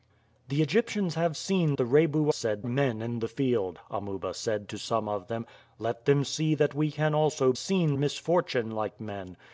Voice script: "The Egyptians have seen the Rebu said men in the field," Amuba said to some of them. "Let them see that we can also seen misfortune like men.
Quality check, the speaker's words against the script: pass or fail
pass